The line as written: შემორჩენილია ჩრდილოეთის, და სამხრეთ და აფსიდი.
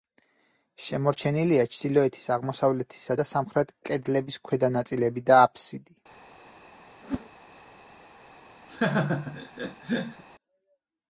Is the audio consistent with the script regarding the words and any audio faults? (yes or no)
no